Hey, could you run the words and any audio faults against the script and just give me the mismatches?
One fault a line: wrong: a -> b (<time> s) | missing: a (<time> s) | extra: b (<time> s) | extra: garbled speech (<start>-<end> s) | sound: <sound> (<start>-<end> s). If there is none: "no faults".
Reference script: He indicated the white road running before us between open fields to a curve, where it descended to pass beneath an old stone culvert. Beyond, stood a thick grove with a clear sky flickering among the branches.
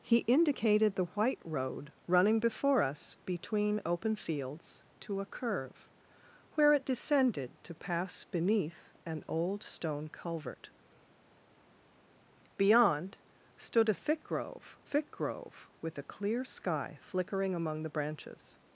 extra: thick grove (14.8 s)